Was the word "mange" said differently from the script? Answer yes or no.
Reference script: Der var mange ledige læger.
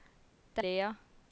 yes